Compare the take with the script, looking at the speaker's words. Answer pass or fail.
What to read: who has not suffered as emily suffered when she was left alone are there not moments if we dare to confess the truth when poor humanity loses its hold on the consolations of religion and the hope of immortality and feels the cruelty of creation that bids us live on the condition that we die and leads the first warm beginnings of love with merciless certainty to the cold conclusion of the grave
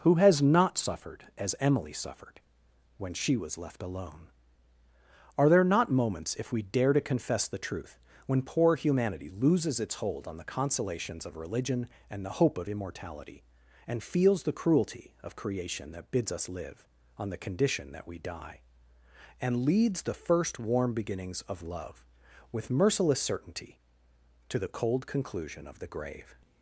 pass